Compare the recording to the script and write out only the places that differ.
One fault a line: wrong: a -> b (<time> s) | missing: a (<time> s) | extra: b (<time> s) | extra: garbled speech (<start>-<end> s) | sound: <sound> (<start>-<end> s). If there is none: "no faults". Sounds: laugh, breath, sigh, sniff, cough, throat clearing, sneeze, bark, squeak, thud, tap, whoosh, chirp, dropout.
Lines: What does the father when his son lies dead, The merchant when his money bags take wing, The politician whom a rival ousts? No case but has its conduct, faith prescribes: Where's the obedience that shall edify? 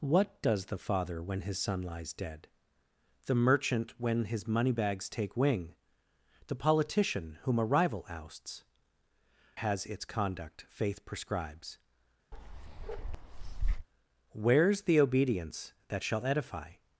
missing: No case but (8.6 s)
sound: bark (12.3-13.9 s)